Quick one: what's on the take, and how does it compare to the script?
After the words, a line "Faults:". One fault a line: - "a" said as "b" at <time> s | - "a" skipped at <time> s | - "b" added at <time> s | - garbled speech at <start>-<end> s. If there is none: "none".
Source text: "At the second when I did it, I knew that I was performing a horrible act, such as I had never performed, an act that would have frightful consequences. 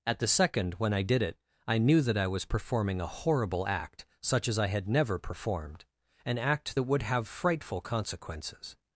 "At the second when I did it, I knew that I was performing a horrible act, such as I had never performed, an act that would have frightful consequences.
Faults:
none